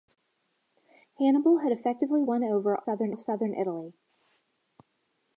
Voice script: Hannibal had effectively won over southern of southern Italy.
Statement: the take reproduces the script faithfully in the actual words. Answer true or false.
true